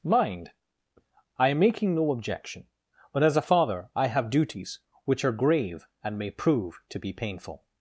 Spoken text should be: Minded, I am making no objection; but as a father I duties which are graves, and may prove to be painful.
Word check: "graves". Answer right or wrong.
wrong